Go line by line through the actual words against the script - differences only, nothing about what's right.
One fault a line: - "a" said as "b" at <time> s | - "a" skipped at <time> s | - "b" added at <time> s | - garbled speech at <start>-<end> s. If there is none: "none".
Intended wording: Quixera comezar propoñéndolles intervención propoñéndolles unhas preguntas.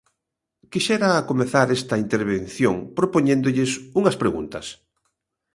- "propoñéndolles" said as "esta" at 1.8 s